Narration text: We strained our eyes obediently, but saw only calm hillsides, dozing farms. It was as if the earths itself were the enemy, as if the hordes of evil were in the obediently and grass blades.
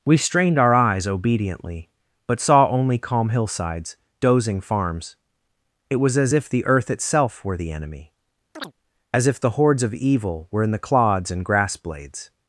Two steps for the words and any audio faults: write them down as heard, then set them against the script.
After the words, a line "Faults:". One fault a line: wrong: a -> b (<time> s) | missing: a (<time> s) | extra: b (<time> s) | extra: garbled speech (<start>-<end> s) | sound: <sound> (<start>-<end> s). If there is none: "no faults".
We strained our eyes obediently, but saw only calm hillsides, dozing farms. It was as if the earth itself were the enemy, as if the hordes of evil were in the clods and grass blades.
Faults:
wrong: earths -> earth (6.7 s)
sound: chirp (8.5-8.7 s)
wrong: obediently -> clods (10.8 s)